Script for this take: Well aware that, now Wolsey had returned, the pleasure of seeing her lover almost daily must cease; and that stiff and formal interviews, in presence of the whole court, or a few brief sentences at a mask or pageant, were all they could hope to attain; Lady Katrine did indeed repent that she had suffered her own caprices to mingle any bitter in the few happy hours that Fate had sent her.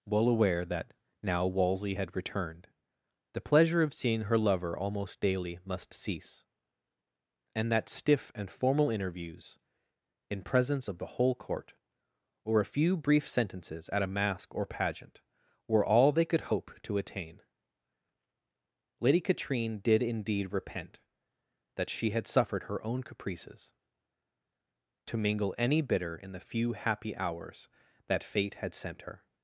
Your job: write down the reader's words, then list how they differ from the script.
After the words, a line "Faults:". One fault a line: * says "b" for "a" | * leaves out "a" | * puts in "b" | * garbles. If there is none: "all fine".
Well aware that, now Wolsey had returned, the pleasure of seeing her lover almost daily must cease; and that stiff and formal interviews, in presence of the whole court, or a few brief sentences at a mask or pageant, were all they could hope to attain; Lady Katrine did indeed repent that she had suffered her own caprices to mingle any bitter in the few happy hours that Fate had sent her.
Faults:
all fine